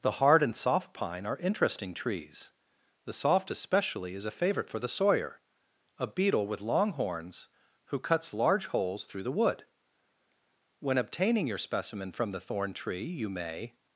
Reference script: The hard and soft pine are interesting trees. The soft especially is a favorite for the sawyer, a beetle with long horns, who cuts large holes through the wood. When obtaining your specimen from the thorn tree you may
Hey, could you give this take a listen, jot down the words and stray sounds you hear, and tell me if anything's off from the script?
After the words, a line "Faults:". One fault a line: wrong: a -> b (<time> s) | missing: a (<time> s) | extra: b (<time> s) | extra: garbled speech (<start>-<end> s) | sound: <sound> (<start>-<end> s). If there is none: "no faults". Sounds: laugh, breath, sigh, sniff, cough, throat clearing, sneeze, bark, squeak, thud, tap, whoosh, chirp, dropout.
The hard and soft pine are interesting trees. The soft especially is a favorite for the sawyer, a beetle with long horns, who cuts large holes through the wood. When obtaining your specimen from the thorn tree you may
Faults:
no faults